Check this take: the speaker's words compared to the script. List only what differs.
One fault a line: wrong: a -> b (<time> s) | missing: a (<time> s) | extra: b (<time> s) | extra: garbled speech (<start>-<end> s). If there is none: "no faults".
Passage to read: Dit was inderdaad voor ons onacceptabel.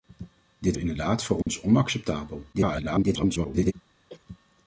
missing: was (0.8 s)
extra: garbled speech (2.5-3.7 s)